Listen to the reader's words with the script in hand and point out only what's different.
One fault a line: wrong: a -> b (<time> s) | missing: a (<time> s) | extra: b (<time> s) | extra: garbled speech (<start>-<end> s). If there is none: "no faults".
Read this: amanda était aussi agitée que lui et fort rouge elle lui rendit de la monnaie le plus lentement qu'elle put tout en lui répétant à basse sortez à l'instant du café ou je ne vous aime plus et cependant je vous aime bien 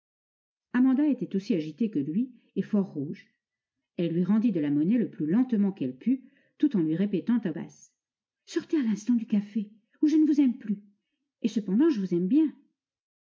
no faults